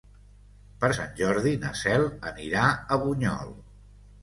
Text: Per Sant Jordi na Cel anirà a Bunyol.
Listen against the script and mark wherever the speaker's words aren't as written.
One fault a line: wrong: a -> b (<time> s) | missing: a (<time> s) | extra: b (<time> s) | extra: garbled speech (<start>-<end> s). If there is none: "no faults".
no faults